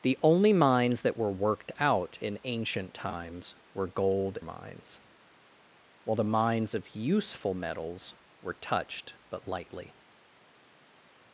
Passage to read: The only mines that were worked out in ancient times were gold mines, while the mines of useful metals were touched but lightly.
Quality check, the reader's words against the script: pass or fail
pass